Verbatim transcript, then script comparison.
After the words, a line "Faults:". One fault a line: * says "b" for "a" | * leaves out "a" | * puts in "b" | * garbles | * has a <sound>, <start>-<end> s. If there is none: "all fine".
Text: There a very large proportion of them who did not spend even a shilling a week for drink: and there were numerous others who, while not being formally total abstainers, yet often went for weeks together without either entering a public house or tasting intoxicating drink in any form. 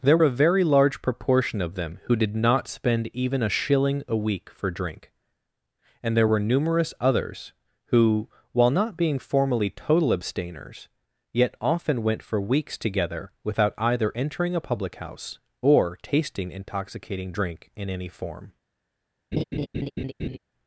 There a very large proportion of them who did not spend even a shilling a week for drink: and there were numerous others who, while not being formally total abstainers, yet often went for weeks together without either entering a public house or tasting intoxicating drink in any form.
Faults:
* has a laugh, 19.3-20.4 s